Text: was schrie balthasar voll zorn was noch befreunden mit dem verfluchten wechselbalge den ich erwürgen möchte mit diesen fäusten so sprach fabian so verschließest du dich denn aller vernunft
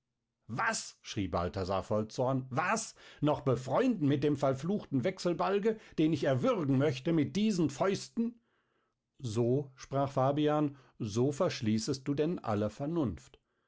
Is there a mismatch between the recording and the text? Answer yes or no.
yes